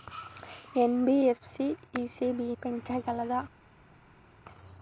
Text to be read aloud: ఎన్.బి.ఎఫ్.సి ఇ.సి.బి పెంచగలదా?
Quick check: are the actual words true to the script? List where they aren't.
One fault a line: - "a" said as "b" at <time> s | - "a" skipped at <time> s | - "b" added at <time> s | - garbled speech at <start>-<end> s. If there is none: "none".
none